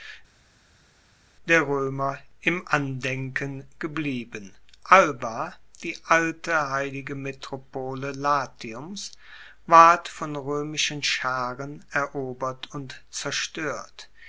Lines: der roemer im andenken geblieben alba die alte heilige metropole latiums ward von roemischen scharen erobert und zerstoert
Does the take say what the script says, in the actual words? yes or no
yes